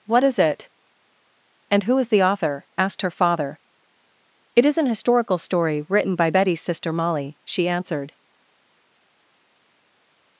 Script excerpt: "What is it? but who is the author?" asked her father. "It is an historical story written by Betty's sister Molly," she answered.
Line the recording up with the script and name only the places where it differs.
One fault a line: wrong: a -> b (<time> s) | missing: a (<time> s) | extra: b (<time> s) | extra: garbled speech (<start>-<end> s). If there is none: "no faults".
wrong: but -> and (1.7 s)